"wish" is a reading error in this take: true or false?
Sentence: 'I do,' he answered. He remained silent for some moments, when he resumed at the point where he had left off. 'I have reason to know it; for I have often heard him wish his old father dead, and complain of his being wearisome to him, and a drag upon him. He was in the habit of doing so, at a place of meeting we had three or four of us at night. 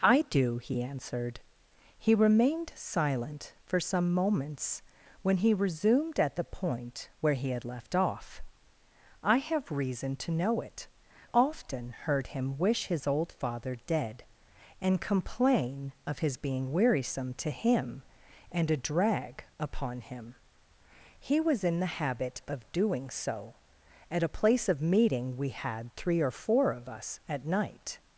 false